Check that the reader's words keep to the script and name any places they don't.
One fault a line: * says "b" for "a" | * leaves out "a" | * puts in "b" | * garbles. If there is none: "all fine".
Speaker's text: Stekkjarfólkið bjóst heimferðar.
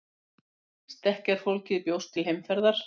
* puts in "til"